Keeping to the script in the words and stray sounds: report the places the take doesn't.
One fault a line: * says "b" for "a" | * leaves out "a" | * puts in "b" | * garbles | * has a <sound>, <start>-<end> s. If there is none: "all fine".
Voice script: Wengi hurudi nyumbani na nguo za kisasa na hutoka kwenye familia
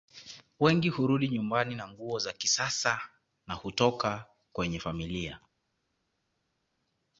all fine